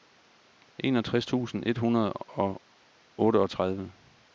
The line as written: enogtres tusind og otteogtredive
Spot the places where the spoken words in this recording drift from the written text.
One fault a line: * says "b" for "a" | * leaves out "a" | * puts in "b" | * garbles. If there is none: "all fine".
* puts in "et hundrede"